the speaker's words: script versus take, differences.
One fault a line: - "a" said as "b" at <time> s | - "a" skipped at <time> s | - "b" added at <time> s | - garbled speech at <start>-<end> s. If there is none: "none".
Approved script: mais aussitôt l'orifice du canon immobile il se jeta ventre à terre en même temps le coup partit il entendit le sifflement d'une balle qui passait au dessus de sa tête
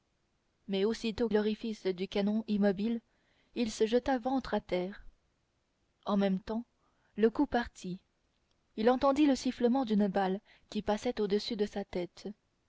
none